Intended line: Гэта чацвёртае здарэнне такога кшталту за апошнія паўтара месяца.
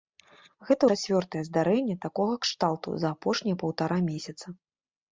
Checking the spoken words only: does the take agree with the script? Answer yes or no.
yes